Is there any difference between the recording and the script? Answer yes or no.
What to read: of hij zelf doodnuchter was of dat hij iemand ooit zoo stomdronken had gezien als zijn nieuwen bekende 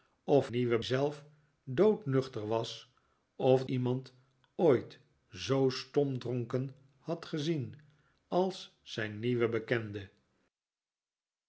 yes